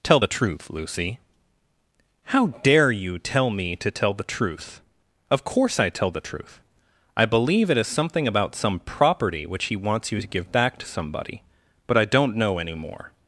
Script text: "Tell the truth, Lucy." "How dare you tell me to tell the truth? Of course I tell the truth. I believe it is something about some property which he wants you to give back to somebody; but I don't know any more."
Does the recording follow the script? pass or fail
pass